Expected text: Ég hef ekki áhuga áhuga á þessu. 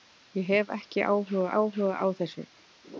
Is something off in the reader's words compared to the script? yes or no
no